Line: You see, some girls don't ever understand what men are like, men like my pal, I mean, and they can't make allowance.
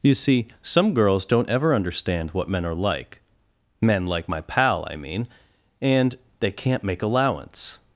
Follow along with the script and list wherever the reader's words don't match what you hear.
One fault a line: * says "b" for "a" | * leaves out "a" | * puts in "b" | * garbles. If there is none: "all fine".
all fine